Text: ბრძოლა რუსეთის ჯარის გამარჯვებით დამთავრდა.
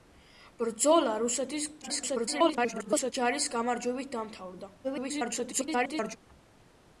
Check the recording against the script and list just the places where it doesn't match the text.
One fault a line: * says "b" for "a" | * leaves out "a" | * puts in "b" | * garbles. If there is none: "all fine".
* garbles
* garbles